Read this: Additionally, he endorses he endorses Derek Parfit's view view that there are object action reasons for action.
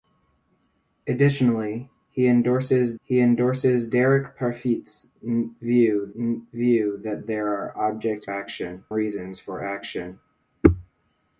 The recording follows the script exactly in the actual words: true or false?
true